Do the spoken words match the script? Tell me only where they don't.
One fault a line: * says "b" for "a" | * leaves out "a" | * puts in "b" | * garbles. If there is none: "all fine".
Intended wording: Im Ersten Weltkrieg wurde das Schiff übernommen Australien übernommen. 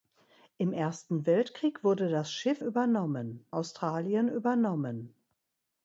all fine